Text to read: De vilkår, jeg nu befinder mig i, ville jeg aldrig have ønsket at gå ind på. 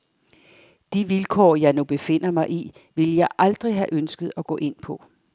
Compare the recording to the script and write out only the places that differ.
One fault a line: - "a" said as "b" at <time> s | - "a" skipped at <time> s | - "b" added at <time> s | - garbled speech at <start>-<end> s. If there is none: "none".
none